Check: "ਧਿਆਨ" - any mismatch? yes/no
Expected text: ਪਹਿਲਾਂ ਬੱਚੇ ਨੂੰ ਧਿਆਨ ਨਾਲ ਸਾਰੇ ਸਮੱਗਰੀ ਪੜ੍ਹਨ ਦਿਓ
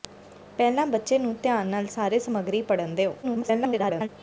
no